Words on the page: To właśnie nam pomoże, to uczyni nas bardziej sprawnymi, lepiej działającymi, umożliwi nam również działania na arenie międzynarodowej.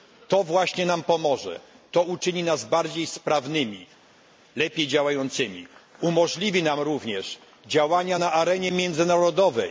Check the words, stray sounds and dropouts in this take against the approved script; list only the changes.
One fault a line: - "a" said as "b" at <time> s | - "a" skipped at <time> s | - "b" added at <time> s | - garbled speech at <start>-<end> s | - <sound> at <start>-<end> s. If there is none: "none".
none